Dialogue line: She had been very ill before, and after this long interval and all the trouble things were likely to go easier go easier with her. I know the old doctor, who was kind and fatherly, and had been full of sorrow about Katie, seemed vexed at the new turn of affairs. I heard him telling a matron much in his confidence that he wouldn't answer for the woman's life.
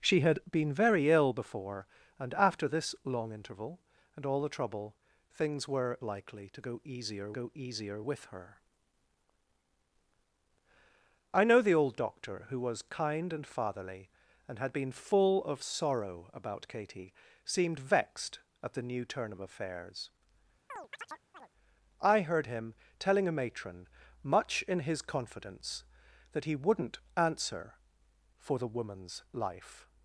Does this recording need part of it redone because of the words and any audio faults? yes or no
yes